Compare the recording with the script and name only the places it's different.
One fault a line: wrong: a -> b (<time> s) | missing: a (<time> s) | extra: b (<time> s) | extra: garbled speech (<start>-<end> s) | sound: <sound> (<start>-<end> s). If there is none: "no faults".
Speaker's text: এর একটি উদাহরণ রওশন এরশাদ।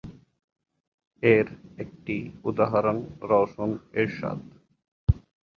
no faults